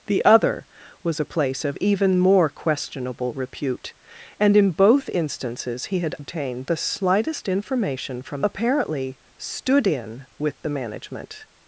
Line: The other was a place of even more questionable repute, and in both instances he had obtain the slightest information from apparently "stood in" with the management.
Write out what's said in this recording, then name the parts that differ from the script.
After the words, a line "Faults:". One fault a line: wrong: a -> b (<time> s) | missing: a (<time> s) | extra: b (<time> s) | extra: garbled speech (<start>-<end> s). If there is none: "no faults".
The other was a place of even more questionable repute, and in both instances he had obtain the slightest information from apparently "stood in" with the management.
Faults:
no faults